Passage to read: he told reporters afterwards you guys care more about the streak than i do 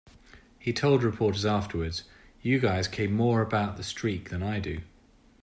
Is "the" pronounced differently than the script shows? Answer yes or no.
no